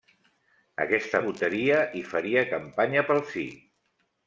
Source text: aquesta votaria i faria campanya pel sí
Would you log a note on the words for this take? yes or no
no